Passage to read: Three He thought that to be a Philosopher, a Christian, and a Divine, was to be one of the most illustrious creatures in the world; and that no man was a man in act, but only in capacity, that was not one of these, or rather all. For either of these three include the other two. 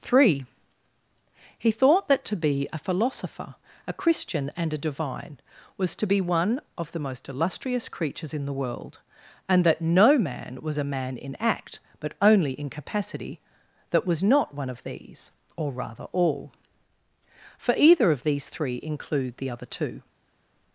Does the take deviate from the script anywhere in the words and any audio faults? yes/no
no